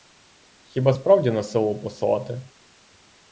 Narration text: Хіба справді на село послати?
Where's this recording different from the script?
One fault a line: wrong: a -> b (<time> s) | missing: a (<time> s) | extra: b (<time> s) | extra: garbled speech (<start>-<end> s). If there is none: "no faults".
no faults